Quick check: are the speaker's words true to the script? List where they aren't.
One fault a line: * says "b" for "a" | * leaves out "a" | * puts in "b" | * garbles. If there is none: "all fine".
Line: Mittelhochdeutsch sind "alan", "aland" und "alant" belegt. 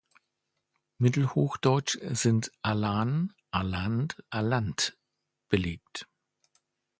* leaves out "und"